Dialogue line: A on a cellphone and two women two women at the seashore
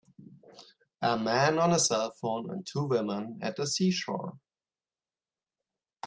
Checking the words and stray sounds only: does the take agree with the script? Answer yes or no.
no